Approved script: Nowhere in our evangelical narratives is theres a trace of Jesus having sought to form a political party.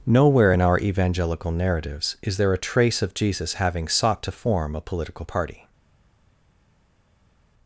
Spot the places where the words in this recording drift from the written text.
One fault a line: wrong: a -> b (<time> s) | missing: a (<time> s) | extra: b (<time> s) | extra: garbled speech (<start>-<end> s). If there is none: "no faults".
wrong: theres -> there (2.4 s)